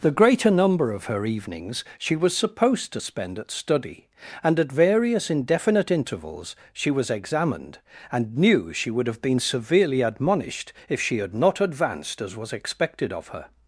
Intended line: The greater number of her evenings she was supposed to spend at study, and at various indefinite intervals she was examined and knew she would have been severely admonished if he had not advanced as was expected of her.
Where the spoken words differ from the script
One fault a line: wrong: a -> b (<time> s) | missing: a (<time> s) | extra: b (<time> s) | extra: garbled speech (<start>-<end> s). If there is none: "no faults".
wrong: he -> she (11.0 s)